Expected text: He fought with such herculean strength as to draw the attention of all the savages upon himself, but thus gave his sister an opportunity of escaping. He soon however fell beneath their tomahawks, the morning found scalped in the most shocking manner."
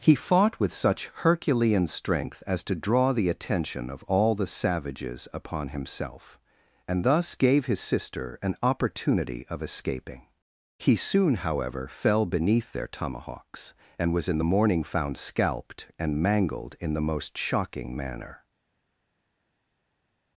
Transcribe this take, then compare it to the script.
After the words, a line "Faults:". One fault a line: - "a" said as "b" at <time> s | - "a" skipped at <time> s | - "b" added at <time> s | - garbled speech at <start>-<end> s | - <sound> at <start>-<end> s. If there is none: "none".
He fought with such herculean strength as to draw the attention of all the savages upon himself, and thus gave his sister an opportunity of escaping. He soon however fell beneath their tomahawks, and was in the morning found scalped and mangled in the most shocking manner."
Faults:
- "but" said as "and" at 6.9 s
- "and was in" added at 14.0 s
- "and mangled" added at 16.0 s